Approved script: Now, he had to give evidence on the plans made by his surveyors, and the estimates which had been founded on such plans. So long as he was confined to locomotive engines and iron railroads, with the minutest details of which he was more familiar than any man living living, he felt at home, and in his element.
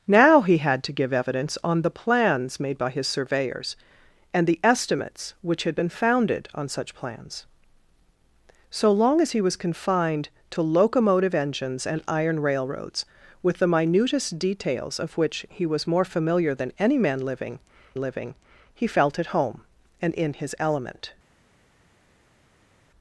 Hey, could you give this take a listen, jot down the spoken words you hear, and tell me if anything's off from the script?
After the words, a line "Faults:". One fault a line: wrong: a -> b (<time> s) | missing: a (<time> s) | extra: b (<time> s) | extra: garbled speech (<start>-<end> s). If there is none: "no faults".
Now, he had to give evidence on the plans made by his surveyors, and the estimates which had been founded on such plans. So long as he was confined to locomotive engines and iron railroads, with the minutest details of which he was more familiar than any man living living, he felt at home, and in his element.
Faults:
no faults